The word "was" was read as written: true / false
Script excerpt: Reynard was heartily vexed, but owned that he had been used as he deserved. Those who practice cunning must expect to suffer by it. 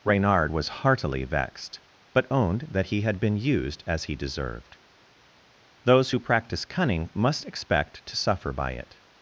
true